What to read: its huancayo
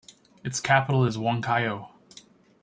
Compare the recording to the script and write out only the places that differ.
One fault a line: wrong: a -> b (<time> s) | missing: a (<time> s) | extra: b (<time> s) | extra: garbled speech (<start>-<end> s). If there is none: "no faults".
extra: capital is (0.6 s)